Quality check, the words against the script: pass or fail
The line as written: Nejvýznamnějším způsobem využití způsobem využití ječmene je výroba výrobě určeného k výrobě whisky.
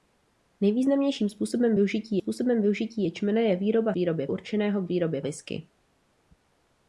pass